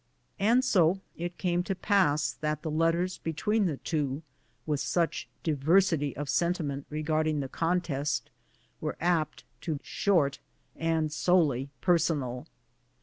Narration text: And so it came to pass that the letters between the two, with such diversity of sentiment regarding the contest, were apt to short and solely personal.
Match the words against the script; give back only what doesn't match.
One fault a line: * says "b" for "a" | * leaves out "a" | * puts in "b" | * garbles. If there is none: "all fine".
all fine